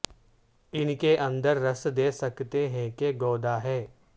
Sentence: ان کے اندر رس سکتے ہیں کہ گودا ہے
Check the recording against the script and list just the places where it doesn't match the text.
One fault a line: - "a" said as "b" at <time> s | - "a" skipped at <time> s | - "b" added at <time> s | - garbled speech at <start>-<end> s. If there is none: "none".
- "دے" added at 2.0 s